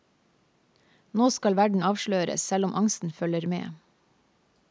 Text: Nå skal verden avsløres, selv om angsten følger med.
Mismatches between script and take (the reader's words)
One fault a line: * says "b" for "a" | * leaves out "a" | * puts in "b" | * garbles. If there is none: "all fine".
all fine